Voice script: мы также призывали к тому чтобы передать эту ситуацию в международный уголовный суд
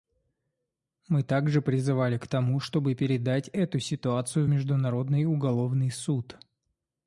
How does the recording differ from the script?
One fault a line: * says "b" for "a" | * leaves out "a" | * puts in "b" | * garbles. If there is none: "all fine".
all fine